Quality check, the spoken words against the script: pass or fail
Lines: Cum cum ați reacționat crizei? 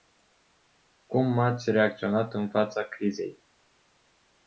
fail